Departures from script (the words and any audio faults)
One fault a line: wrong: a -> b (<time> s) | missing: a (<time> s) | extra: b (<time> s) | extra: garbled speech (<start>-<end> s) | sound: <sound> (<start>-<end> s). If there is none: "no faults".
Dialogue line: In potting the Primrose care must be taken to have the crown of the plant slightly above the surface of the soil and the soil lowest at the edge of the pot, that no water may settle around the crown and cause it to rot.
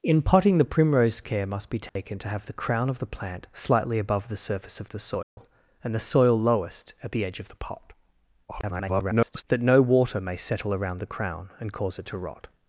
sound: dropout (1.9-2.0 s)
sound: dropout (5.2-5.4 s)
extra: garbled speech (8.5-9.4 s)